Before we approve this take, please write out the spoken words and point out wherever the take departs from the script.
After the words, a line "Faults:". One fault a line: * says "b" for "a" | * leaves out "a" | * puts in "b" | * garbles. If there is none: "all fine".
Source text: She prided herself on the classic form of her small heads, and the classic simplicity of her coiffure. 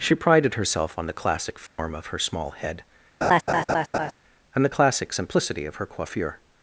She prided herself on the classic form of her small head, and the classic simplicity of her coiffure.
Faults:
* says "head" for "heads"